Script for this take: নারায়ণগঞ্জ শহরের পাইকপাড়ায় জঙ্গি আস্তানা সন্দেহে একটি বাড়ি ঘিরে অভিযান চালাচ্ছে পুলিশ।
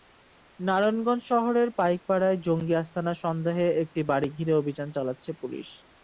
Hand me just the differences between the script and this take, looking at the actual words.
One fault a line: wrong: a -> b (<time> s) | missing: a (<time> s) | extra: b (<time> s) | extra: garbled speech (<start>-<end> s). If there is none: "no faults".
no faults